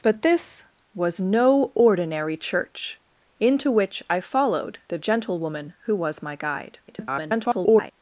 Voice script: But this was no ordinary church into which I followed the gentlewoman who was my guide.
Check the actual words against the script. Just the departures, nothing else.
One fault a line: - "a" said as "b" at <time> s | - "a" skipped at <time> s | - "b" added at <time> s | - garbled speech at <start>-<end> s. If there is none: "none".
- garbled speech at 6.9-7.9 s